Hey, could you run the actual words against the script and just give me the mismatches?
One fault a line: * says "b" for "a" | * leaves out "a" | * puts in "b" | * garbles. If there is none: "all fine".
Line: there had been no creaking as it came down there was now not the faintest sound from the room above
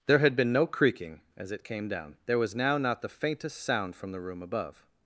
all fine